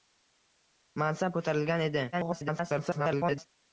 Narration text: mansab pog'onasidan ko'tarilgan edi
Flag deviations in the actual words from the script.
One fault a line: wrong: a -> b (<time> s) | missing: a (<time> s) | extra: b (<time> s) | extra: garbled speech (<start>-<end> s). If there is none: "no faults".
missing: pog'onasidan (1.4 s)
extra: garbled speech (2.1-3.5 s)